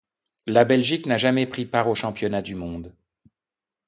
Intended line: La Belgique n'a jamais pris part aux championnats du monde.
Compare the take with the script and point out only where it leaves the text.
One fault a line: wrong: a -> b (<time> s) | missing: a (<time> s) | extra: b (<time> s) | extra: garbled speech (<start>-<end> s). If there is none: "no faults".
no faults